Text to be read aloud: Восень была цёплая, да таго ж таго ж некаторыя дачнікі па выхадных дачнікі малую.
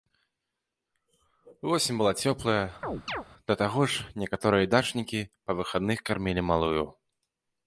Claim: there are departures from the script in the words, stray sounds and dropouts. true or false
true